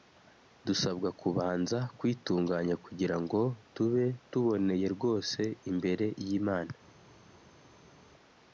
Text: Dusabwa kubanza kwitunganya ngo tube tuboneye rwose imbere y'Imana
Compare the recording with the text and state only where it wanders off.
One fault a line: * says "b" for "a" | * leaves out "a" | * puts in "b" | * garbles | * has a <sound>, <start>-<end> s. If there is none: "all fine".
* puts in "kugira"